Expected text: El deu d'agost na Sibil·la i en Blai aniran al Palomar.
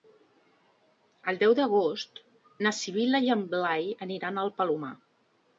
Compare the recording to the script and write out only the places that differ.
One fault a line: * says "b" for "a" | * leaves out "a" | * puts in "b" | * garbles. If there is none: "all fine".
all fine